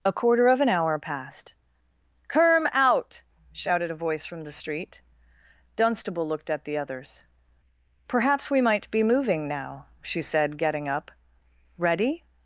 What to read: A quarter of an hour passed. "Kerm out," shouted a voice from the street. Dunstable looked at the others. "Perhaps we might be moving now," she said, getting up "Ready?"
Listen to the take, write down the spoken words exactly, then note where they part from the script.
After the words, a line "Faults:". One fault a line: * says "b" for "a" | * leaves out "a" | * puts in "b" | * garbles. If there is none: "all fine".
A quarter of an hour passed. "Kerm out," shouted a voice from the street. Dunstable looked at the others. "Perhaps we might be moving now," she said, getting up "Ready?"
Faults:
all fine